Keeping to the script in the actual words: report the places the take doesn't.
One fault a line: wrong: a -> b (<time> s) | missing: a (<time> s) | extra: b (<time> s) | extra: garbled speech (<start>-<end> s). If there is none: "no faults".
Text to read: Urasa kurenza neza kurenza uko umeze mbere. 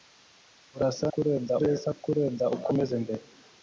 no faults